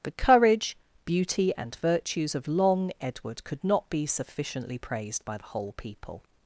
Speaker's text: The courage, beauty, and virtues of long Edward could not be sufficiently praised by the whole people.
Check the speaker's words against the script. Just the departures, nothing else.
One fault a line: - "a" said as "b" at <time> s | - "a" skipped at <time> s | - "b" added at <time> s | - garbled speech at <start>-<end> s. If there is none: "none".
none